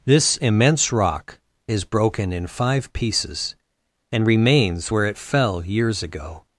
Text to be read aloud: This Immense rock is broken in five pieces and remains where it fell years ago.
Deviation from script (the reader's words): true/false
false